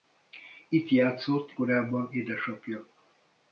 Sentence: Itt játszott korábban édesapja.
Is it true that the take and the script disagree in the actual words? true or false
false